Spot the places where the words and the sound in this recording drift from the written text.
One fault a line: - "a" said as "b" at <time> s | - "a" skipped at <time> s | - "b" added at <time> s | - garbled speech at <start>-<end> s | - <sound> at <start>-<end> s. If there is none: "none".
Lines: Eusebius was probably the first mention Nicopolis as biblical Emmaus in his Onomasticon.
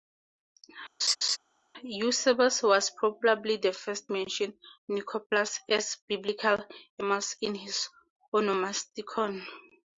- laugh at 1.0-1.4 s